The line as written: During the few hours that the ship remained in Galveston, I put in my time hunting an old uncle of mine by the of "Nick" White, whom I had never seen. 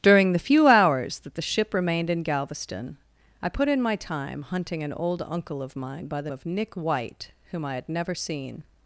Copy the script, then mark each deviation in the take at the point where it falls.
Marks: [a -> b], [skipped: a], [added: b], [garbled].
During the few hours that the ship remained in Galveston, I put in my time hunting an old uncle of mine by the of "Nick" White, whom I had never seen.